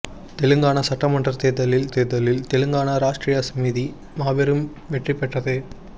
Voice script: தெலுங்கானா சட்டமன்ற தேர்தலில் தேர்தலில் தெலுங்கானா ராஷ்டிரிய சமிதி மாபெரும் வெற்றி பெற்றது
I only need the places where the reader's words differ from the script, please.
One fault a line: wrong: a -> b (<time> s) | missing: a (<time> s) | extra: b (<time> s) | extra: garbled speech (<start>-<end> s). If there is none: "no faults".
no faults